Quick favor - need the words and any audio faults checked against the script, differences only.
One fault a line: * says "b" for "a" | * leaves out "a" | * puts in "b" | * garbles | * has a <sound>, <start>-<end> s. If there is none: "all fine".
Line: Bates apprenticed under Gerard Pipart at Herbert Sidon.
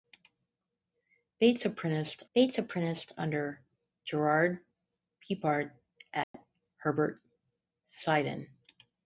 * puts in "bates apprenticed"
* has a dropout, 6.2-6.3 s